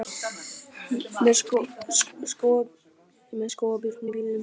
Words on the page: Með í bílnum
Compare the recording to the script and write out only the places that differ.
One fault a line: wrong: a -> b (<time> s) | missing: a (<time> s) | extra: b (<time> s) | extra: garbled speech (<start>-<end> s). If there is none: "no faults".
extra: skógarbjörn (3.5 s)